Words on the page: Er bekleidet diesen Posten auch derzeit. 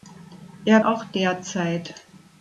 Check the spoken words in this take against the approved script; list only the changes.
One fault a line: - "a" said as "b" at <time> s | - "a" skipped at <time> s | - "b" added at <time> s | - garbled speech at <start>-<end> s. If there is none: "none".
- "bekleidet diesen Posten" skipped at 0.8 s